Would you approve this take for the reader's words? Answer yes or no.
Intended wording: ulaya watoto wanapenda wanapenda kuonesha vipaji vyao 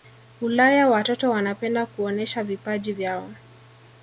no